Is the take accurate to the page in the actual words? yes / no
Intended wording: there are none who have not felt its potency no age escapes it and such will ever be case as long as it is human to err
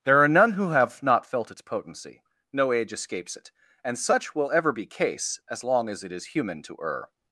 yes